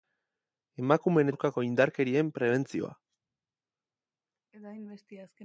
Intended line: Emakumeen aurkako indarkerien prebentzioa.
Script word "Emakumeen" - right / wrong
right